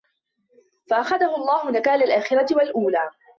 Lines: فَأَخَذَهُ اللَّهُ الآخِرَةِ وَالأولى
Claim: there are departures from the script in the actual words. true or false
true